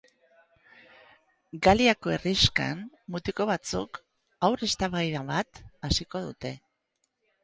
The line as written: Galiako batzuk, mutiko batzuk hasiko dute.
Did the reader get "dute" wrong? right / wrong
right